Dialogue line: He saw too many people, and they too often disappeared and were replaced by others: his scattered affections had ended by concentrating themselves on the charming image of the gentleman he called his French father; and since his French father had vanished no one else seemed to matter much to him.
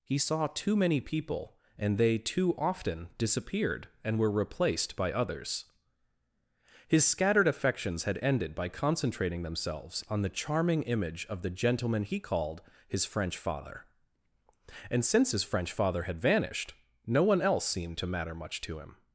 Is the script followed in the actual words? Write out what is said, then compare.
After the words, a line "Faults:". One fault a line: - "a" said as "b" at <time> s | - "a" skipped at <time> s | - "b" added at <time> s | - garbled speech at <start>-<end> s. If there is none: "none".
He saw too many people, and they too often disappeared and were replaced by others: his scattered affections had ended by concentrating themselves on the charming image of the gentleman he called his French father; and since his French father had vanished no one else seemed to matter much to him.
Faults:
none